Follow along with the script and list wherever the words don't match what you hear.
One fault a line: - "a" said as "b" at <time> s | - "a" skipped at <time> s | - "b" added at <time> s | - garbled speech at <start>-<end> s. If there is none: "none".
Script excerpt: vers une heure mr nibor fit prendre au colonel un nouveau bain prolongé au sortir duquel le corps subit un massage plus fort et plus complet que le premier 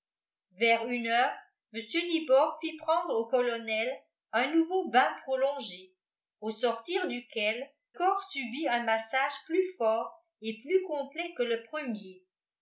- "le" skipped at 7.7 s